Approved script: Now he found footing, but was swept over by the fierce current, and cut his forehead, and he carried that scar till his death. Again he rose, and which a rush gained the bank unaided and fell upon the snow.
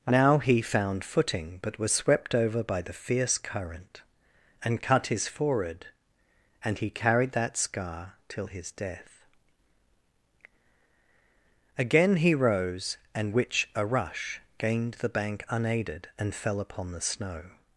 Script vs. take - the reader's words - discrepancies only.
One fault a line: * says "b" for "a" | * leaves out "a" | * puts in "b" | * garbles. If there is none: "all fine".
all fine